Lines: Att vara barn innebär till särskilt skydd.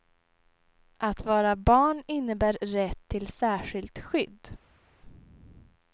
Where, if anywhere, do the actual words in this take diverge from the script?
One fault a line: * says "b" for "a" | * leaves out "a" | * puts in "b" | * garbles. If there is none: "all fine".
* puts in "rätt"